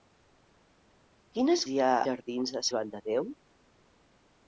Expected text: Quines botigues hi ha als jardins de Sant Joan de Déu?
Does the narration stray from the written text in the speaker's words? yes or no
yes